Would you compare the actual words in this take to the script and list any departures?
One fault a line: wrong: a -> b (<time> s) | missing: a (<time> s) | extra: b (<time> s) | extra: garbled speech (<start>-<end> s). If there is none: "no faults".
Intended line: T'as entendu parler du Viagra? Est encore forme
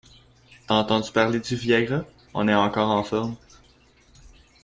extra: On (2.3 s)
extra: en (2.9 s)